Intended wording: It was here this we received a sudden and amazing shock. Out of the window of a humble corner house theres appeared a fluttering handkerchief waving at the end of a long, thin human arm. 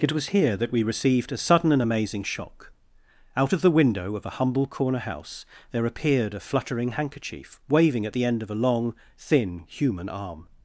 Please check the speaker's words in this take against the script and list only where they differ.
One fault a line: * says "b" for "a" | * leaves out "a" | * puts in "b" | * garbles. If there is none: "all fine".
* says "that" for "this"
* says "there" for "theres"